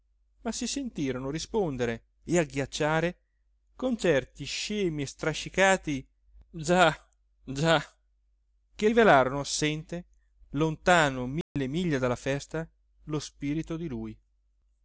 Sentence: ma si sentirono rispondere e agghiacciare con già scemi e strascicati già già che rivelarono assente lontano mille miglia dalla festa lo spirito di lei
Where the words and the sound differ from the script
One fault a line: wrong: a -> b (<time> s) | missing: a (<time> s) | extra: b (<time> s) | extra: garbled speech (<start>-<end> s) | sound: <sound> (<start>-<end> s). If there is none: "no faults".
wrong: già -> certi (4.0 s)
sound: dropout (11.4-11.6 s)
wrong: lei -> lui (13.9 s)